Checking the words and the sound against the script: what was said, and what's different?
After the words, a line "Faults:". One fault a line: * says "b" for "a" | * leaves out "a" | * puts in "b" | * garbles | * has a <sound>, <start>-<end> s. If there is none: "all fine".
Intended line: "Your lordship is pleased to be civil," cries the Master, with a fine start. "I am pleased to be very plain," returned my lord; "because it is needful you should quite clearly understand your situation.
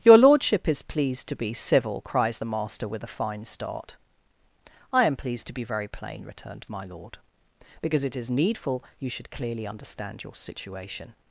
"Your lordship is pleased to be civil," cries the Master, with a fine start. "I am pleased to be very plain," returned my lord; "because it is needful you should clearly understand your situation.
Faults:
* leaves out "quite"